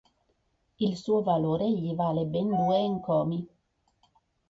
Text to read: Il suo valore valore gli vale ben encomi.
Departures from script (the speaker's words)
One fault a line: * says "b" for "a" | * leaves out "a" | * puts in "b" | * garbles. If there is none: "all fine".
* leaves out "valore"
* puts in "due"